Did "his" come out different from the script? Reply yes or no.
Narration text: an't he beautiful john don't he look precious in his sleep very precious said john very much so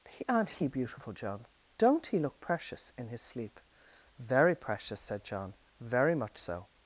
no